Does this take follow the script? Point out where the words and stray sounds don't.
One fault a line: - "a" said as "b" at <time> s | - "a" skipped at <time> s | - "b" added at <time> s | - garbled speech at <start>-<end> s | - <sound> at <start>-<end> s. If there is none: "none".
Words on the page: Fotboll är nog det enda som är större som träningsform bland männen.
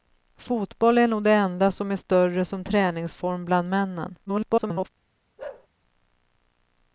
- garbled speech at 4.3-4.9 s
- bark at 5.4-5.7 s